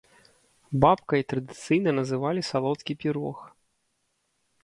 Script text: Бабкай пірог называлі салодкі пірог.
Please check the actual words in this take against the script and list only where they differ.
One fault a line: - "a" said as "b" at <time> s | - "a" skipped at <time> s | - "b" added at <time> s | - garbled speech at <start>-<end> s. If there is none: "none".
- "пірог" said as "традыцыйна" at 1.3 s